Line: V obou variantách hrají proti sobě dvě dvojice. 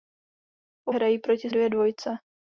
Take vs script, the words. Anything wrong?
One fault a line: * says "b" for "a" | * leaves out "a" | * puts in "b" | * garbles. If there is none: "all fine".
* leaves out "obou variantách"
* leaves out "sobě"